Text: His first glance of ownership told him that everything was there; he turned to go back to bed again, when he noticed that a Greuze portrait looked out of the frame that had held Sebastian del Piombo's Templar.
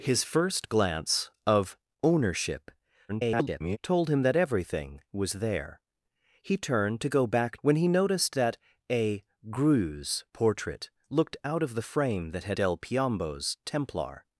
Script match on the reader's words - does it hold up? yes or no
no